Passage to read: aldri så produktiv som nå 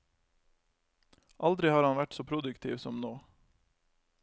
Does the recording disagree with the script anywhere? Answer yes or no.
yes